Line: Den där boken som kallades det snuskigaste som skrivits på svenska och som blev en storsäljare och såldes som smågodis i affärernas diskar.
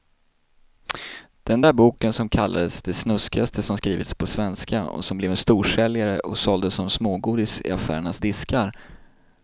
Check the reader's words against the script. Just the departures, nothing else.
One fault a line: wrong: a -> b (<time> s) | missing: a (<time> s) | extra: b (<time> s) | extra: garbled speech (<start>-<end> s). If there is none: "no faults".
no faults